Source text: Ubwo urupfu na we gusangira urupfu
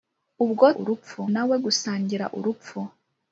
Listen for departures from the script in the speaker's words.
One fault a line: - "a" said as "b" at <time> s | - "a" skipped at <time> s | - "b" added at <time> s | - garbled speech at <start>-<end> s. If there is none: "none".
none